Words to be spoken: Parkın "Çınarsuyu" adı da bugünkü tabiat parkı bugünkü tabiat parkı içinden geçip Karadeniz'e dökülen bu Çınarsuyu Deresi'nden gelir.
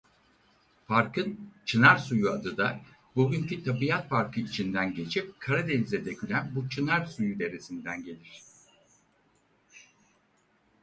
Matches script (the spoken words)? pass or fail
fail